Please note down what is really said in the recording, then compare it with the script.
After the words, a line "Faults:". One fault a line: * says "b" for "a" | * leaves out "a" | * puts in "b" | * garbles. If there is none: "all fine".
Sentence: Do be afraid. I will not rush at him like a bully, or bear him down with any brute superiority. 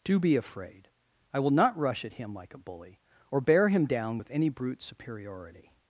Do be afraid. I will not rush at him like a bully, or bear him down with any brute superiority.
Faults:
all fine